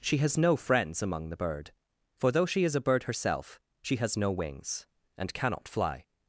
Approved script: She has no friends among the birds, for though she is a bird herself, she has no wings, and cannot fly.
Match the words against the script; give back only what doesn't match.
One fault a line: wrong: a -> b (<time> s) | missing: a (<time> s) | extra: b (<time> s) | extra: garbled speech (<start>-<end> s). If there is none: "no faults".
wrong: birds -> bird (1.4 s)